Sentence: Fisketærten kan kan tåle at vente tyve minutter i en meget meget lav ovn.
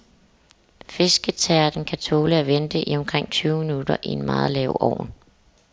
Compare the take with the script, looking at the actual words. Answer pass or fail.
fail